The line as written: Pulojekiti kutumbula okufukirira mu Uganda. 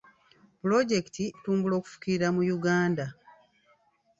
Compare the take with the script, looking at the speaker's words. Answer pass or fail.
pass